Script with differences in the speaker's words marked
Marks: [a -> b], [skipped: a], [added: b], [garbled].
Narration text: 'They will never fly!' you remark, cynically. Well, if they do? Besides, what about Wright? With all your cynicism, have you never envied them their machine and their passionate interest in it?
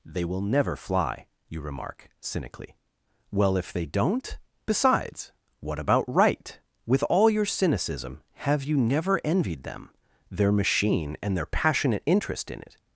'They will never fly!' you remark, cynically. Well, if they [do? -> don't] Besides, what about Wright? With all your cynicism, have you never envied them their machine and their passionate interest in it?